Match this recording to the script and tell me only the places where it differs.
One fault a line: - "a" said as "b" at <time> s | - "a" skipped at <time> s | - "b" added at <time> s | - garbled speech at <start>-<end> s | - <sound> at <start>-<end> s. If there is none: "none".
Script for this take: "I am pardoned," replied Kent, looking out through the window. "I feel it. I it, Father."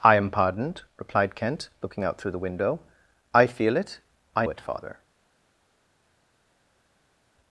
none